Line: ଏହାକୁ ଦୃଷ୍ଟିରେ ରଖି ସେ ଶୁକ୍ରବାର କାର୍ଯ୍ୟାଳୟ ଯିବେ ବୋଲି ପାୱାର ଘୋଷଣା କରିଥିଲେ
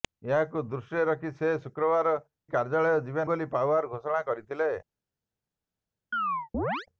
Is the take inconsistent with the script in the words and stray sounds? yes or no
yes